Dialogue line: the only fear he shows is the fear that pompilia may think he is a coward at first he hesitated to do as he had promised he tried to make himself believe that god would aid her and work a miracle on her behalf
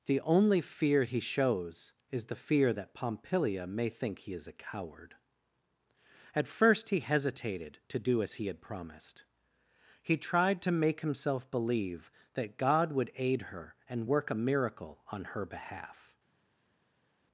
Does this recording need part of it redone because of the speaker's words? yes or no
no